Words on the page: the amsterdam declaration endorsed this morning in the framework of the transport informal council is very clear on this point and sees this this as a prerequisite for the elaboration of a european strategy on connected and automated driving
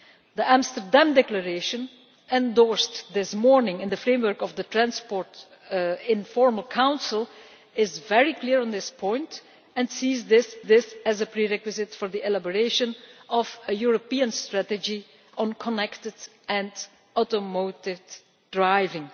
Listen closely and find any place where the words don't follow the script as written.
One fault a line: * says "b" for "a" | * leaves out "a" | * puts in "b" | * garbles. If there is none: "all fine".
all fine